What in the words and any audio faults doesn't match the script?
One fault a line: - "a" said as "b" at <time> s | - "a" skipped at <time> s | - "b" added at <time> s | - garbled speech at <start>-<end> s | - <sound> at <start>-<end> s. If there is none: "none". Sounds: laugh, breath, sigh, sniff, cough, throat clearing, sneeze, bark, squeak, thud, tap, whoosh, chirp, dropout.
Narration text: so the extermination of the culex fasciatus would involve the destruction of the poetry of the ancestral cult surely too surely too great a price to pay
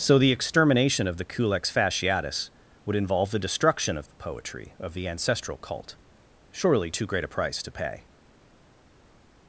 - "surely too" skipped at 7.0 s